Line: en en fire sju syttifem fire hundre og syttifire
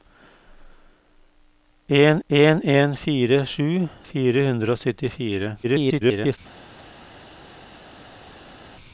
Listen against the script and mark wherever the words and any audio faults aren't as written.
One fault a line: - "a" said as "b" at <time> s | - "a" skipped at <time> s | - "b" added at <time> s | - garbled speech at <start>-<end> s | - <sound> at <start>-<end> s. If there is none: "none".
- "en" added at 2.6 s
- "syttifem" skipped at 3.7 s
- garbled speech at 5.6-6.4 s